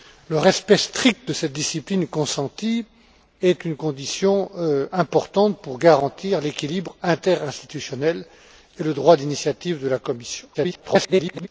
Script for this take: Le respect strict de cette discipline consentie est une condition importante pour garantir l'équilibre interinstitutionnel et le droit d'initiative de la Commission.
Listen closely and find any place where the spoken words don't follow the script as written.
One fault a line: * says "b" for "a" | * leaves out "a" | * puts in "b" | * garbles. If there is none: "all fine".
* garbles